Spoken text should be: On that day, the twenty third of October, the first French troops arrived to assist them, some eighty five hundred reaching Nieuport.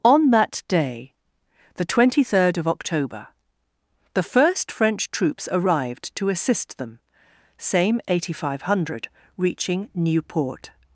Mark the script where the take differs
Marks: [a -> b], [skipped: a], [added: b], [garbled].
On that day, the twenty third of October, the first French troops arrived to assist them, [some -> same] eighty five hundred reaching Nieuport.